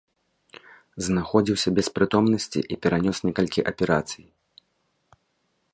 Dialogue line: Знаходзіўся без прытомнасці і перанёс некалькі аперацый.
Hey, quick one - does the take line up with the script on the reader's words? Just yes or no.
yes